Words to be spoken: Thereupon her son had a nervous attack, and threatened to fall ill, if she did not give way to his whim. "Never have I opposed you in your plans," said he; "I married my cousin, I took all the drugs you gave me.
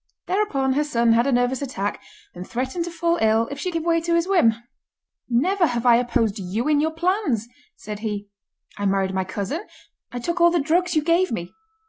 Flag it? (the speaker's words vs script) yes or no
yes